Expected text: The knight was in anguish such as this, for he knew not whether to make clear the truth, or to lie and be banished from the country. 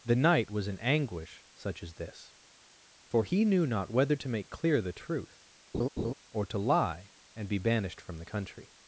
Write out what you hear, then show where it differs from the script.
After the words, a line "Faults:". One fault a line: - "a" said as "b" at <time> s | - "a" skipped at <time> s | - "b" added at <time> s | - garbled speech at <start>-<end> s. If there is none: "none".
The knight was in anguish such as this, for he knew not whether to make clear the truth, or to lie and be banished from the country.
Faults:
none